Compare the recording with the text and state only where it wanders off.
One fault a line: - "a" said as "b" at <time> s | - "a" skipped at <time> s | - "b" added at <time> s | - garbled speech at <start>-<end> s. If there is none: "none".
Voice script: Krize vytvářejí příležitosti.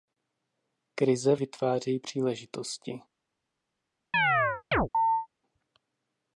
none